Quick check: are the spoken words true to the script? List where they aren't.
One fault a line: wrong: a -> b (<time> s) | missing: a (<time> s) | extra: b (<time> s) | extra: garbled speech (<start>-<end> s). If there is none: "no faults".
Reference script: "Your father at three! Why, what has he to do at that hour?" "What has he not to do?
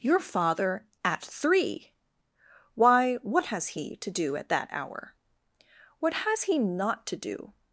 no faults